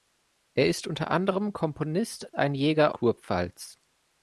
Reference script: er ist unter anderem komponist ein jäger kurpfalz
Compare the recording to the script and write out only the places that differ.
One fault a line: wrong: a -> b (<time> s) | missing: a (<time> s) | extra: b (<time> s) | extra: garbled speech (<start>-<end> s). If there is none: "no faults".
no faults